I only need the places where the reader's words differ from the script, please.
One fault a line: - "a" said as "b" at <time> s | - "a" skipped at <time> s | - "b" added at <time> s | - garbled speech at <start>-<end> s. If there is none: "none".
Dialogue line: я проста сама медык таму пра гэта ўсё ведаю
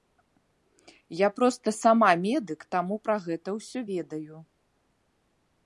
none